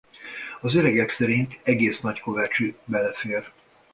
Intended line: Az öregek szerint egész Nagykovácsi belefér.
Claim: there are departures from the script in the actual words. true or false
false